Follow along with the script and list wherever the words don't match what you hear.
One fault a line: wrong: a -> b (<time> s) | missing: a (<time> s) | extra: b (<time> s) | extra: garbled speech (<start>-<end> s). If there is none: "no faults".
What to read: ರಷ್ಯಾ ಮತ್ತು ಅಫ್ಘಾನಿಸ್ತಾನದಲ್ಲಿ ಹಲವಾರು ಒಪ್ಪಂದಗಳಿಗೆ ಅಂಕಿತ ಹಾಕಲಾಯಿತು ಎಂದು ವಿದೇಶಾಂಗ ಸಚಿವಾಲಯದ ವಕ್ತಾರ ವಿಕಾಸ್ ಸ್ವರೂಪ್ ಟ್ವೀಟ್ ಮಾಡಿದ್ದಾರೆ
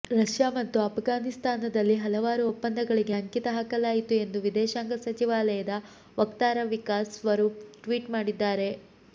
no faults